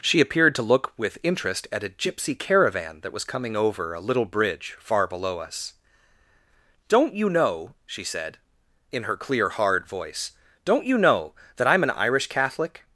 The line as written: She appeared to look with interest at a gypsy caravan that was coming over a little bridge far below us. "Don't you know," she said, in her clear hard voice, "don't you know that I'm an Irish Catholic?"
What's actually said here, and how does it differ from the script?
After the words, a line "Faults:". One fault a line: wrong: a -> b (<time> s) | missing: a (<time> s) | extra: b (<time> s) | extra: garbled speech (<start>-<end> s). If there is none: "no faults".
She appeared to look with interest at a gypsy caravan that was coming over a little bridge far below us. "Don't you know," she said, in her clear hard voice, "don't you know that I'm an Irish Catholic?"
Faults:
no faults